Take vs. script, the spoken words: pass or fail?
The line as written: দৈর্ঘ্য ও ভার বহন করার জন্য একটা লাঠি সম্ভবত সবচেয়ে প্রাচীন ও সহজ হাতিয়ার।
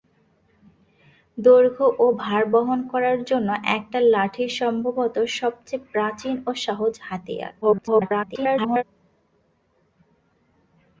fail